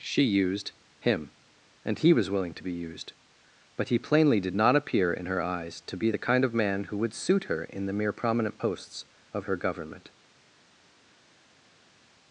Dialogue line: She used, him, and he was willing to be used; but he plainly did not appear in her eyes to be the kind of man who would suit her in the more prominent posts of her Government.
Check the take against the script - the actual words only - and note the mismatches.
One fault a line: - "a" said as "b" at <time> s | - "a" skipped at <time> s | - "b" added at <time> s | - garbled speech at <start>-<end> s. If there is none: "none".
- "more" said as "mere" at 7.9 s